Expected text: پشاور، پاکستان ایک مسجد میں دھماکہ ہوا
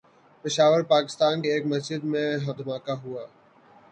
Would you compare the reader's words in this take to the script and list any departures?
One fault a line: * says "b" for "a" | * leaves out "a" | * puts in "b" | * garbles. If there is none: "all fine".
all fine